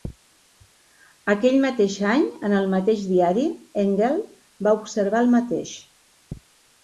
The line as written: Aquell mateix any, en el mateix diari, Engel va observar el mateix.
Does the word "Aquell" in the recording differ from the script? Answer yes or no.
no